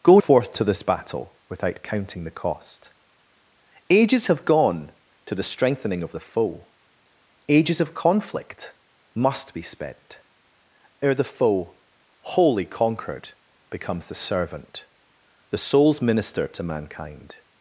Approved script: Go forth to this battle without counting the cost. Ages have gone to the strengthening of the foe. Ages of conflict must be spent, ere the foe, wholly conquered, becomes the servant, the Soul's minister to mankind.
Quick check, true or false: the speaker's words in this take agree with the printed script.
true